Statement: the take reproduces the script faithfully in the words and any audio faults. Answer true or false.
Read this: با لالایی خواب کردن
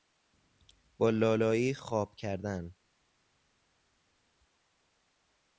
true